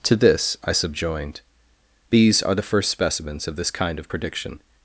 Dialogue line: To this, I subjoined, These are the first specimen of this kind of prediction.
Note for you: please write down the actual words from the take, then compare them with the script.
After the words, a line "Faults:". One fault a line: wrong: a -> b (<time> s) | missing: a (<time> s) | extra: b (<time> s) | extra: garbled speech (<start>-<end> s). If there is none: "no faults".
To this, I subjoined, These are the first specimens of this kind of prediction.
Faults:
wrong: specimen -> specimens (2.9 s)